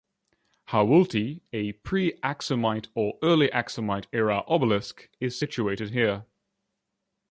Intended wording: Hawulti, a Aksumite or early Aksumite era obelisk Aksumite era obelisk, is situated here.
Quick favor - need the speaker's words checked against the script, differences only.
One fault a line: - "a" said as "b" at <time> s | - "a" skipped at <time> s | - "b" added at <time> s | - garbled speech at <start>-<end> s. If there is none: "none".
- "pre" added at 1.7 s
- "Aksumite era obelisk" skipped at 5.1 s